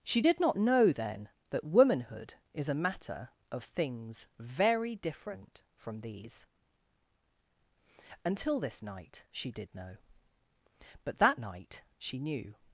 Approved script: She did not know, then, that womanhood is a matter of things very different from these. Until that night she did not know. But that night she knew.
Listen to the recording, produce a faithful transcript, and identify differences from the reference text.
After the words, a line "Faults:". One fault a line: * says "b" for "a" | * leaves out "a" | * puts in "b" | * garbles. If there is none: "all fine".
She did not know, then, that womanhood is a matter of things very different from these. Until this night she did know. But that night she knew.
Faults:
* says "this" for "that"
* leaves out "not"